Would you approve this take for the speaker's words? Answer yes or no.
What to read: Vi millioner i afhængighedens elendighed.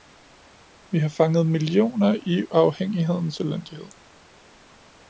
no